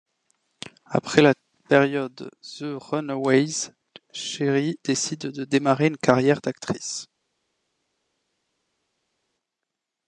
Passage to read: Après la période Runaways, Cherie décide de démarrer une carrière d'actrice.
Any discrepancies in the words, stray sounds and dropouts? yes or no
yes